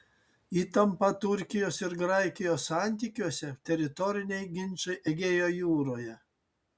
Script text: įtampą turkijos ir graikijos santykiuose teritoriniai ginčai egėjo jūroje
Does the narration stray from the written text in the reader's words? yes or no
no